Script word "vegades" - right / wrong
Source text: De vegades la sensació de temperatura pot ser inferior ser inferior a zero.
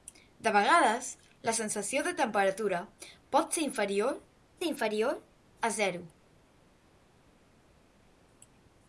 right